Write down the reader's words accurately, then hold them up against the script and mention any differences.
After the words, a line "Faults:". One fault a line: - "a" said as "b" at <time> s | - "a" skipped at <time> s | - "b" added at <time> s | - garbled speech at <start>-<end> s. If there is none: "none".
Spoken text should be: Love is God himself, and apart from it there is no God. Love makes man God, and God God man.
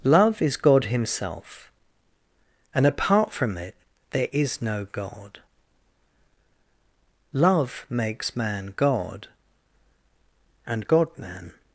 Love is God himself, and apart from it there is no God. Love makes man God, and God man.
Faults:
- "God" skipped at 11.1 s